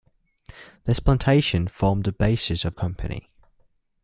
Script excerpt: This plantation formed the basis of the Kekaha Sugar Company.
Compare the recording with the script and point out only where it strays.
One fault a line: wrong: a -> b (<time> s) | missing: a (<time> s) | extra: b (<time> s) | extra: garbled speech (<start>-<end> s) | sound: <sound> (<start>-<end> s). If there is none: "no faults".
missing: the Kekaha Sugar (2.7 s)